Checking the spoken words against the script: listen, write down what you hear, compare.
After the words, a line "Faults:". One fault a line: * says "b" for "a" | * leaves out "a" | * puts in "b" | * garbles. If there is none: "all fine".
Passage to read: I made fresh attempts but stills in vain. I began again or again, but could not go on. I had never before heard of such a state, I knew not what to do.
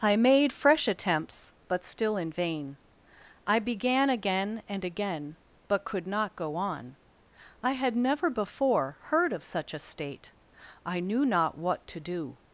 I made fresh attempts but still in vain. I began again and again, but could not go on. I had never before heard of such a state, I knew not what to do.
Faults:
* says "still" for "stills"
* says "and" for "or"